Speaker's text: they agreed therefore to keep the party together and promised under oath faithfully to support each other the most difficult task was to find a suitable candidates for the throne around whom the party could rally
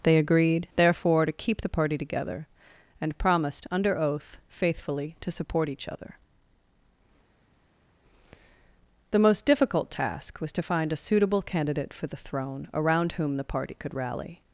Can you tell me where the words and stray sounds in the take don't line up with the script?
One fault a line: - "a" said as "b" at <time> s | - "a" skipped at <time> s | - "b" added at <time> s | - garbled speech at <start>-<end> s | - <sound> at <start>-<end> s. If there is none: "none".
- "candidates" said as "candidate" at 11.4 s